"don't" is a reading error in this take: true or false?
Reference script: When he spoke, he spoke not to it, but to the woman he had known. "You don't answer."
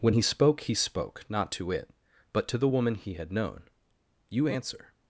true